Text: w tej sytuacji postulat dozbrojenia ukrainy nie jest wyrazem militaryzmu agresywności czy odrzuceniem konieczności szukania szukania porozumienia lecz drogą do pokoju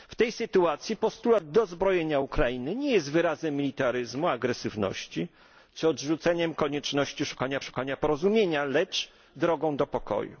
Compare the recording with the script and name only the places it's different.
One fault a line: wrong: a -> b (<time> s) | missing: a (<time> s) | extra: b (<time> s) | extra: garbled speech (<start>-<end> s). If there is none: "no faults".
no faults